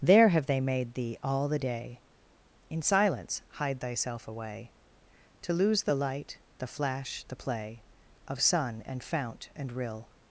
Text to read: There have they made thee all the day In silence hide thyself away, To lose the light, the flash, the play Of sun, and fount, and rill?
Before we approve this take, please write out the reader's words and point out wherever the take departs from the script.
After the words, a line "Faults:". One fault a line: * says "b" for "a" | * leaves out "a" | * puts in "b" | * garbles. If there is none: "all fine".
There have they made thee all the day In silence hide thyself away, To lose the light, the flash, the play Of sun, and fount, and rill?
Faults:
all fine